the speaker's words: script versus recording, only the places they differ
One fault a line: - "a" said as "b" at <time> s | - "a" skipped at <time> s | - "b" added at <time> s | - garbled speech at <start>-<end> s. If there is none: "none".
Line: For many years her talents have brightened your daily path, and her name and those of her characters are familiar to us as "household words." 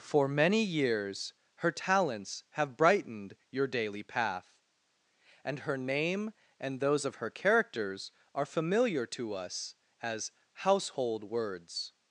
none